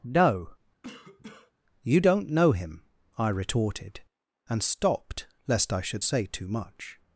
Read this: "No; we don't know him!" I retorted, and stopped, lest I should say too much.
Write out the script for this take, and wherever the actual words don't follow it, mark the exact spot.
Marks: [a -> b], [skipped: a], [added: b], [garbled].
"No; [we -> you] don't know him!" I retorted, and stopped, lest I should say too much.